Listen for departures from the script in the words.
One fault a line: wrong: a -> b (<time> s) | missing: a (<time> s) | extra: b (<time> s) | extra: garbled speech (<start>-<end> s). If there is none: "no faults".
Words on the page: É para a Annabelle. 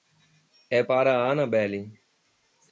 no faults